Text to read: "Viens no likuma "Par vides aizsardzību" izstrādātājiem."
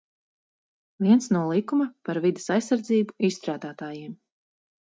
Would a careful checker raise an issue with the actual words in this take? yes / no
no